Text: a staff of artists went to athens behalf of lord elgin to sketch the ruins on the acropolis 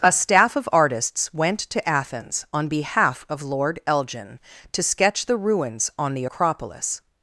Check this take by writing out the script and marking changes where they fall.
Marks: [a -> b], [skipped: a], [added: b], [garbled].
a staff of artists went to athens [added: on] behalf of lord elgin to sketch the ruins on the acropolis